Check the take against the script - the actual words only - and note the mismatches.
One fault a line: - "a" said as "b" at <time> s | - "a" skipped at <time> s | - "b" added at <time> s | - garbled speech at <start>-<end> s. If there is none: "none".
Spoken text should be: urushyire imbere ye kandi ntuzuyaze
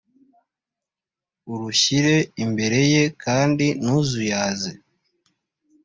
none